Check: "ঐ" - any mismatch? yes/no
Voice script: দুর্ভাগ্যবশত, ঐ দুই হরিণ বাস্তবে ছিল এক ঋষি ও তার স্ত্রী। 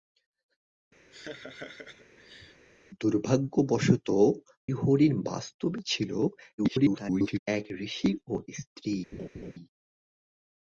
yes